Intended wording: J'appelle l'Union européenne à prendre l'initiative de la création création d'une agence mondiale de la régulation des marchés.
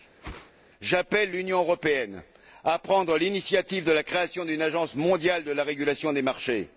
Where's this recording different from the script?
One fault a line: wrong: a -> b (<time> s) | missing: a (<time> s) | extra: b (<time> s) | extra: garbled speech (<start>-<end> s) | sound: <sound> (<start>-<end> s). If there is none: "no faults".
sound: whoosh (0.2-0.5 s)
missing: création (4.4 s)